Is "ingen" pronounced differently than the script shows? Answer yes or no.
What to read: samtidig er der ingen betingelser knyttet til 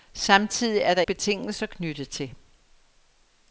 yes